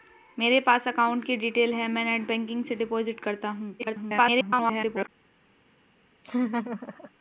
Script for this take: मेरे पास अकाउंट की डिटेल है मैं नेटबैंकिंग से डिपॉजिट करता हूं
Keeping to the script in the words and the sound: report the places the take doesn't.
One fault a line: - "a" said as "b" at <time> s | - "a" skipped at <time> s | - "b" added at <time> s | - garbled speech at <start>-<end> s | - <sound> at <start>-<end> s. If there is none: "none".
- garbled speech at 3.8-5.1 s
- laugh at 6.2-7.1 s